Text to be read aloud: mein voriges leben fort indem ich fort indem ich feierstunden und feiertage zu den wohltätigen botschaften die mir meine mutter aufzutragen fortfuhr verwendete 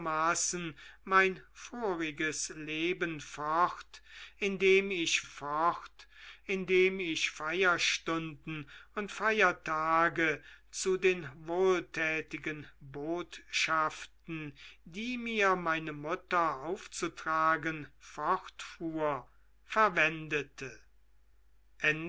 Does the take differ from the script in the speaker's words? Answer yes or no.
no